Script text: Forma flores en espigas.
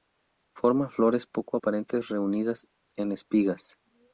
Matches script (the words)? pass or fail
fail